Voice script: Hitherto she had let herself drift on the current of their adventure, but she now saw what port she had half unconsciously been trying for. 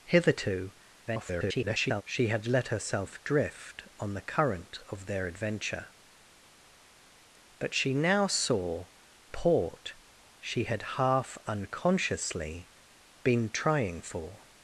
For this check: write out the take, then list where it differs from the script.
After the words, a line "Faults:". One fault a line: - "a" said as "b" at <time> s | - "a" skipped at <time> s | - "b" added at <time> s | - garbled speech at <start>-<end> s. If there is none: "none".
Hitherto [garbled] she had let herself drift on the current of their adventure, but she now saw port she had half unconsciously been trying for.
Faults:
- garbled speech at 1.1-2.0 s
- "what" skipped at 8.9 s